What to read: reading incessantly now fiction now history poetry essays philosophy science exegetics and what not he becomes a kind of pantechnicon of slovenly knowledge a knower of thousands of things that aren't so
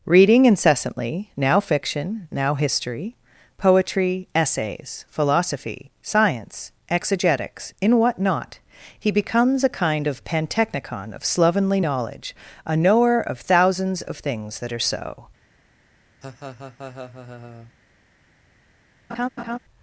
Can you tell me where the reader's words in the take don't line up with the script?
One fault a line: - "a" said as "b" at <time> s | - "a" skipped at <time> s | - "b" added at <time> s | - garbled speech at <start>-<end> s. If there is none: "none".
- "and" said as "in" at 7.8 s
- "aren't" said as "are" at 14.7 s